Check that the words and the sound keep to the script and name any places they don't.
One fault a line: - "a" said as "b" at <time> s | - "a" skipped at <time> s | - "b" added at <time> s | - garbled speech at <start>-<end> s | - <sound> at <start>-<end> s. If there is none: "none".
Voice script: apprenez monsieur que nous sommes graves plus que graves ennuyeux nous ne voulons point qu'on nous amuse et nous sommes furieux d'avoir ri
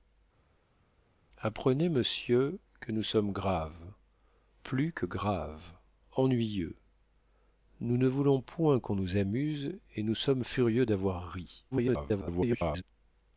- garbled speech at 11.7-12.8 s